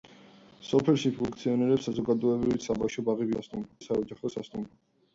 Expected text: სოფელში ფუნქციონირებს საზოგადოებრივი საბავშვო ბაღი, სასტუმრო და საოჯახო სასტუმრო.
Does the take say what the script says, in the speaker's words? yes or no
yes